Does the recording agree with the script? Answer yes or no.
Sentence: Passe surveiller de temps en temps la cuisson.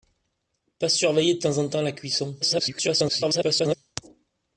no